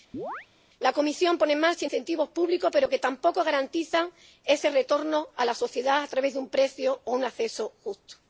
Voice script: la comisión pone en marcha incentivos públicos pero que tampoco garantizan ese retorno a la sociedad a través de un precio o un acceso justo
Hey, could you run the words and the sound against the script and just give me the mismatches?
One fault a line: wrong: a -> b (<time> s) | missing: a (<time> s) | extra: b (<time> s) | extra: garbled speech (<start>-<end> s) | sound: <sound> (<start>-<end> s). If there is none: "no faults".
sound: chirp (0.1-0.5 s)